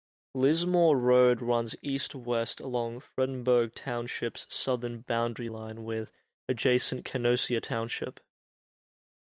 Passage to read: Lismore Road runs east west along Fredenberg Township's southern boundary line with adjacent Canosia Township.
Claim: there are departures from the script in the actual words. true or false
false